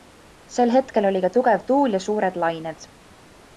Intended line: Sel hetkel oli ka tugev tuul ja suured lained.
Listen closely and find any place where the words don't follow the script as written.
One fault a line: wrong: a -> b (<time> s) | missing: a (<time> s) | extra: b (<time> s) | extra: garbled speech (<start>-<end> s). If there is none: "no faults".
no faults